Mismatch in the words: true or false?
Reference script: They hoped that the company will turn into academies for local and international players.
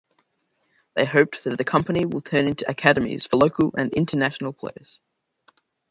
false